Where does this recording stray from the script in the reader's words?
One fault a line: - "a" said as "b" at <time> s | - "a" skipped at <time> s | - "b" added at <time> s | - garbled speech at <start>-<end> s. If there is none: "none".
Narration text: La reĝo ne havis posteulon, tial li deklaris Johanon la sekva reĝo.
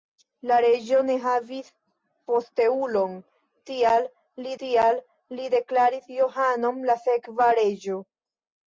- "tial li" added at 4.6 s